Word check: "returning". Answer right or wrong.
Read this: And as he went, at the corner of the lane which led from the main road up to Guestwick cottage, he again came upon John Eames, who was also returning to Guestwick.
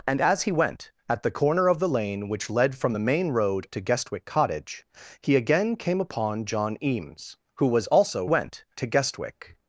wrong